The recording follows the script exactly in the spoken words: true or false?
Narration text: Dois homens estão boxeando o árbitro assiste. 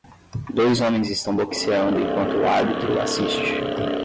false